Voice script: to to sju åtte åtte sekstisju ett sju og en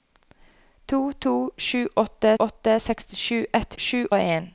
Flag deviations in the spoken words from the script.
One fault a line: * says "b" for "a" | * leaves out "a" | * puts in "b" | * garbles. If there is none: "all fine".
all fine